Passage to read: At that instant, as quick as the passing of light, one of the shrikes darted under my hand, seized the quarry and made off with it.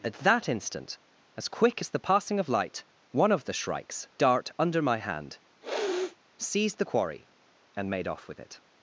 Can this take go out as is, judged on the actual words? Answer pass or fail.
fail